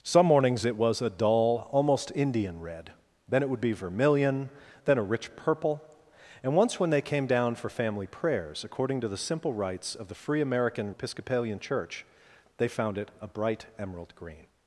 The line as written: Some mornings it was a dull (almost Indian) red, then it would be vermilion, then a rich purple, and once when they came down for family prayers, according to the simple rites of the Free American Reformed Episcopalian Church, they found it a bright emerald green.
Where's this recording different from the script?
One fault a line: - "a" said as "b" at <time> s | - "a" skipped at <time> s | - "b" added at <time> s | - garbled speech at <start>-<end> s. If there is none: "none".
- "Reformed" skipped at 10.9 s